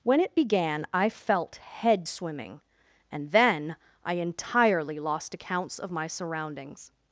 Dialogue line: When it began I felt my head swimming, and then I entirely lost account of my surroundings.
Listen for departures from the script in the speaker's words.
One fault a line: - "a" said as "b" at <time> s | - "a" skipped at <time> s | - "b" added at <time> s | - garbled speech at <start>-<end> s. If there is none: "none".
- "my" skipped at 1.6 s
- "account" said as "accounts" at 5.3 s